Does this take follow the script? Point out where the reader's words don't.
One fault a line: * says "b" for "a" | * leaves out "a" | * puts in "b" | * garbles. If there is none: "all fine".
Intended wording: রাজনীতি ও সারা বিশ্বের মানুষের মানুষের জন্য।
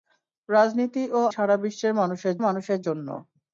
all fine